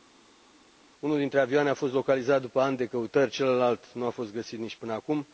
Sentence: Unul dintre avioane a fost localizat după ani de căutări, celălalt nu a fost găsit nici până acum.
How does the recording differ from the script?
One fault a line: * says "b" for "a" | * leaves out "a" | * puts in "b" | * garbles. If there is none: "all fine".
all fine